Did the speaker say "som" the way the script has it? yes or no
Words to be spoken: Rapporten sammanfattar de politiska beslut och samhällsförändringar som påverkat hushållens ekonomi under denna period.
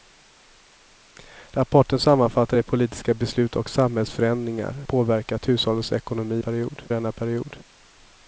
no